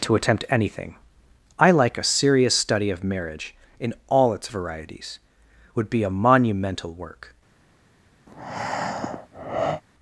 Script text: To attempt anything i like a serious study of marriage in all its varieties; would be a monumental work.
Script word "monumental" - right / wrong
right